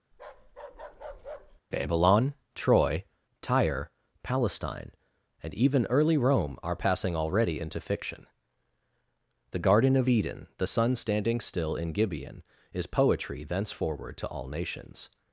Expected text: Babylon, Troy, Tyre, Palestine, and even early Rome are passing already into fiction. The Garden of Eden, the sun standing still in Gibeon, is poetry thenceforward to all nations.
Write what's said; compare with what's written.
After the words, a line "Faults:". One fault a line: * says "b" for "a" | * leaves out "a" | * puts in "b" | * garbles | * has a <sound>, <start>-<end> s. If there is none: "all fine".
Babylon, Troy, Tyre, Palestine, and even early Rome are passing already into fiction. The Garden of Eden, the sun standing still in Gibeon, is poetry thenceforward to all nations.
Faults:
* has a bark, 0.1-1.6 s